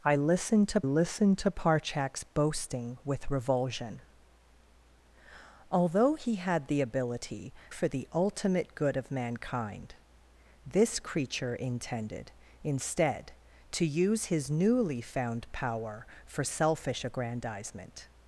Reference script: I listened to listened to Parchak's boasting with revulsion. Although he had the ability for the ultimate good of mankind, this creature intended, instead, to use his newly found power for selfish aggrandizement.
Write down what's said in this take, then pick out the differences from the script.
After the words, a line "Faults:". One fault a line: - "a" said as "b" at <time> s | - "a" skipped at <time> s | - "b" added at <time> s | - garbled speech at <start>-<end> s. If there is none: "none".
I listened to listened to Parchak's boasting with revulsion. Although he had the ability for the ultimate good of mankind, this creature intended, instead, to use his newly found power for selfish aggrandizement.
Faults:
none